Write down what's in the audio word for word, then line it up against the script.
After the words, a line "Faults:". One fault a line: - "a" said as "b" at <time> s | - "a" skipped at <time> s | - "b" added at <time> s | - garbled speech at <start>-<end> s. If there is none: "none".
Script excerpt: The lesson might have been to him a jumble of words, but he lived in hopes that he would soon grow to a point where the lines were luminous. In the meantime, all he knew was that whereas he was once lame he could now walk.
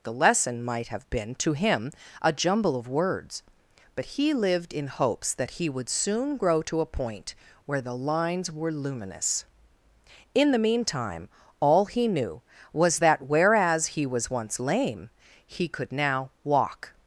The lesson might have been to him a jumble of words, but he lived in hopes that he would soon grow to a point where the lines were luminous. In the meantime, all he knew was that whereas he was once lame he could now walk.
Faults:
none